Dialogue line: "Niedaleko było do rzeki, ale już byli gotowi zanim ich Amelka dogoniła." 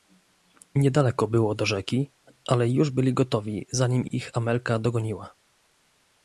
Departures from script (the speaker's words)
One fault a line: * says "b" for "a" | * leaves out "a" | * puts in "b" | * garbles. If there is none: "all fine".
all fine